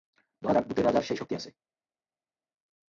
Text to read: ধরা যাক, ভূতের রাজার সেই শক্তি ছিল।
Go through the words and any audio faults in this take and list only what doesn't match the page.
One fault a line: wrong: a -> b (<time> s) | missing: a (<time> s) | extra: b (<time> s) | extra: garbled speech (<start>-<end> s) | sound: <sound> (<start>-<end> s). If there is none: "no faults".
wrong: ছিল -> আছে (1.4 s)